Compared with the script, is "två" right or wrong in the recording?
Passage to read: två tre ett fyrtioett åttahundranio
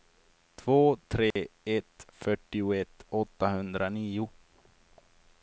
right